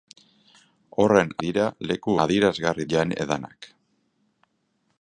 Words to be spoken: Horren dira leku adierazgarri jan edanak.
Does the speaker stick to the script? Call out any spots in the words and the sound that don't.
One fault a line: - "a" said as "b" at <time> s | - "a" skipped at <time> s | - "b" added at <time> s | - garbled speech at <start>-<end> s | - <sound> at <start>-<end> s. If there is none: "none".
none